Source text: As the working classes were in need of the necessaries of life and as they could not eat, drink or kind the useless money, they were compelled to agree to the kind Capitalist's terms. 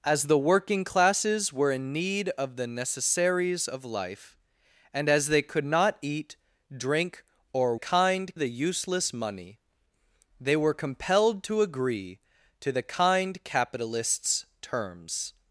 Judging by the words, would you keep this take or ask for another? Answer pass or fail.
pass